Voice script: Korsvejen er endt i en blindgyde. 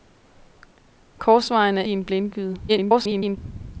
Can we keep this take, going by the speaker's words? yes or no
no